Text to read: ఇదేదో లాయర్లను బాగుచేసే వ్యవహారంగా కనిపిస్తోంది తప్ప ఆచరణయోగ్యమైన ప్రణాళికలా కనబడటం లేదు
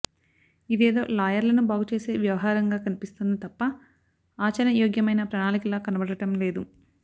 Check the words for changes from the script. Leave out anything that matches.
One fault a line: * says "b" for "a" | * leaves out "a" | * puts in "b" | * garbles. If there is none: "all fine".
all fine